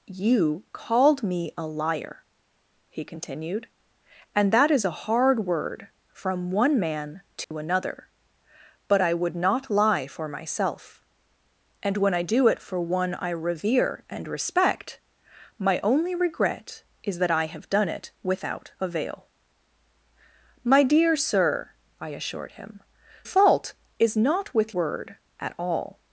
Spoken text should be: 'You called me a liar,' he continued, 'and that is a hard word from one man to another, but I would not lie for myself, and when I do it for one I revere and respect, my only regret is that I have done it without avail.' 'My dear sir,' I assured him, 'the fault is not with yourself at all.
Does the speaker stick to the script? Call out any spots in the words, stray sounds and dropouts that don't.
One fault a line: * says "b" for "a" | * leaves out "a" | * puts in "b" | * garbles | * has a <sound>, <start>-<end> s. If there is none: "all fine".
* has a dropout, 7.4-7.5 s
* leaves out "the"
* says "word" for "yourself"